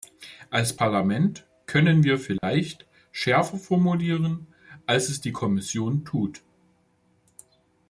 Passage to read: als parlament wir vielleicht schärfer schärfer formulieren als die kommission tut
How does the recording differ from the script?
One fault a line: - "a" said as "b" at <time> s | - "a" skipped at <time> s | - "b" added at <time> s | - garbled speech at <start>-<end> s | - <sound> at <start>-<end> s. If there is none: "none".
- "können" added at 1.7 s
- dropout at 2.4-2.4 s
- "schärfer" skipped at 3.6 s
- "es" added at 5.1 s